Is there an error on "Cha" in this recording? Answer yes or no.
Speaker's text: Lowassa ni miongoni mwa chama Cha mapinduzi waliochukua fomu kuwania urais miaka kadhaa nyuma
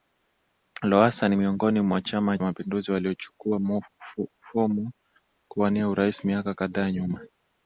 yes